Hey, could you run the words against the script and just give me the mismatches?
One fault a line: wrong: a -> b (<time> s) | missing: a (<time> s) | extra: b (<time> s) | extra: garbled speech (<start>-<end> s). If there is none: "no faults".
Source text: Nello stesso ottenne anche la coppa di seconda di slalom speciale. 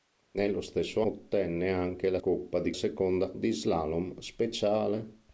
no faults